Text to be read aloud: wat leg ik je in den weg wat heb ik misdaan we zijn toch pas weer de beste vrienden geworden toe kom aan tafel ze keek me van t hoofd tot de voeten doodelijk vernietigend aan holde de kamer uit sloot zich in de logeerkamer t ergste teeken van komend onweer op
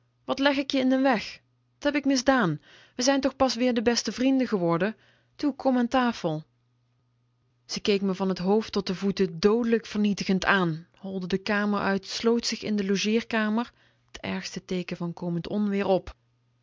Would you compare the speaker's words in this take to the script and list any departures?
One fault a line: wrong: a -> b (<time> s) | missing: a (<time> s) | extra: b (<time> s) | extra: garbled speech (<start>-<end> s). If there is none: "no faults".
missing: wat (1.4 s)